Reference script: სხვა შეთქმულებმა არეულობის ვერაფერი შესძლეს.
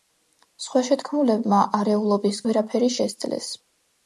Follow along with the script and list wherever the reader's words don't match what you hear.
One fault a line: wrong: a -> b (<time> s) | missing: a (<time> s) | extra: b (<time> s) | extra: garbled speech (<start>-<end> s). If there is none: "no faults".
no faults